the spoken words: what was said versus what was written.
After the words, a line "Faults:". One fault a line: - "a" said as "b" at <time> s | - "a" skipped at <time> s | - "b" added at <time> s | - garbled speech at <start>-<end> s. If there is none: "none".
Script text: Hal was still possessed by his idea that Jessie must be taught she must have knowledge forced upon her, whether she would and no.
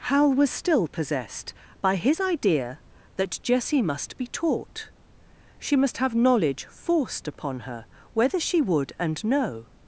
Hal was still possessed by his idea that Jessie must be taught she must have knowledge forced upon her, whether she would and no.
Faults:
none